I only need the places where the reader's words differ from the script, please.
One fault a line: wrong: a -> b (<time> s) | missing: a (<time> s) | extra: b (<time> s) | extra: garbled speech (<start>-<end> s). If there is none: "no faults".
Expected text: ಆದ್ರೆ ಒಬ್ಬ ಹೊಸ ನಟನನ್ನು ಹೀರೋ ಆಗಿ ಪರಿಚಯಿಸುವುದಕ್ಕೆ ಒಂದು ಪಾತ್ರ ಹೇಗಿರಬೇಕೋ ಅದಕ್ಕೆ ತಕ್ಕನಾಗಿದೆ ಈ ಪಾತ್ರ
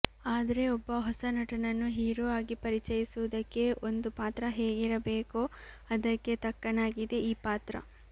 no faults